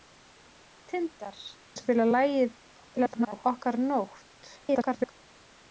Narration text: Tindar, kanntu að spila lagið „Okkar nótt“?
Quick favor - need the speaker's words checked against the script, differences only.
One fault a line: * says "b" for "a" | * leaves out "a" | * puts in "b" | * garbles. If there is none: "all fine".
* leaves out "kanntu"
* garbles
* garbles